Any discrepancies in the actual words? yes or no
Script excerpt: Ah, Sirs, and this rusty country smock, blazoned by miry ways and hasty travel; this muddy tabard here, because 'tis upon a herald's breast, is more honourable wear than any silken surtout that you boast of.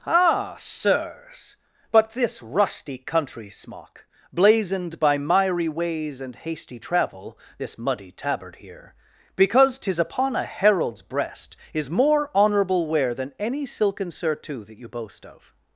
yes